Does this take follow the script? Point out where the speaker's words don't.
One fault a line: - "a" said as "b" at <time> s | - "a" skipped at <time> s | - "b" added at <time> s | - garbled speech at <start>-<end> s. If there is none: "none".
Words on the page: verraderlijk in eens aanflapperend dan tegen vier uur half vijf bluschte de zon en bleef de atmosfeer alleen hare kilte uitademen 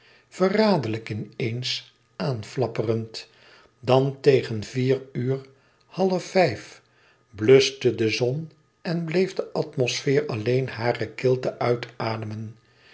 none